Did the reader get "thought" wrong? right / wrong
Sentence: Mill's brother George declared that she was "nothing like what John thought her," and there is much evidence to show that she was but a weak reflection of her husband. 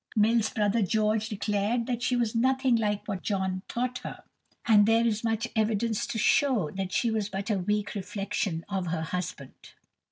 right